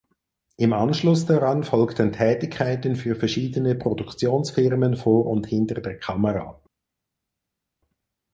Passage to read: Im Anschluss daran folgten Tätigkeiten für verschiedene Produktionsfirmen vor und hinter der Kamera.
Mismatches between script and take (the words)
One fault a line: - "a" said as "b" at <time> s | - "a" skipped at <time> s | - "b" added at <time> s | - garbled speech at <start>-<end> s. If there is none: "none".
none